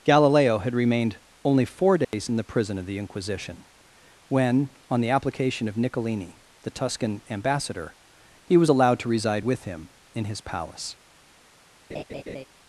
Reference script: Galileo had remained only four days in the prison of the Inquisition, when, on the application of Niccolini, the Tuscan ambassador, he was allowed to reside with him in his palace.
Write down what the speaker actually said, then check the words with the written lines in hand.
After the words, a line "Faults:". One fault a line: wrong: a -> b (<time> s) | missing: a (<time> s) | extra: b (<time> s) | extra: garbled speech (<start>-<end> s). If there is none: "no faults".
Galileo had remained only four days in the prison of the Inquisition, when, on the application of Niccolini, the Tuscan ambassador, he was allowed to reside with him in his palace.
Faults:
no faults